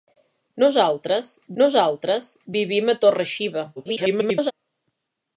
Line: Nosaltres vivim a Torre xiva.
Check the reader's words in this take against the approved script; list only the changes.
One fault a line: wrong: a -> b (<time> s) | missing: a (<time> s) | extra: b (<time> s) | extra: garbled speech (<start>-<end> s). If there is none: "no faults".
extra: nosaltres (1.6 s)
extra: garbled speech (3.8-4.5 s)